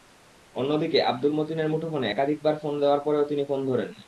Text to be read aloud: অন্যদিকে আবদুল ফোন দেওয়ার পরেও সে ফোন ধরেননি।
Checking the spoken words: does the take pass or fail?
fail